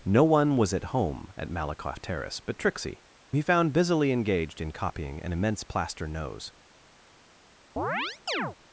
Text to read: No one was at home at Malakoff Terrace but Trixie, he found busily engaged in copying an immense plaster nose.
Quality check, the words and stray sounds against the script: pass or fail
fail